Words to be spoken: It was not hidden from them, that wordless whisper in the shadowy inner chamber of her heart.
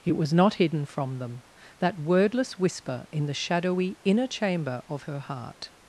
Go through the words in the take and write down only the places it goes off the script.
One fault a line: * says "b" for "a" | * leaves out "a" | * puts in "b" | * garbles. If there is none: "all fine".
all fine